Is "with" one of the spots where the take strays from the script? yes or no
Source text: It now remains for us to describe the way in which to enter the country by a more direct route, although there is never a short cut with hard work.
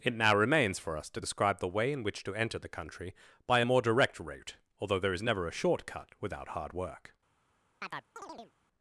yes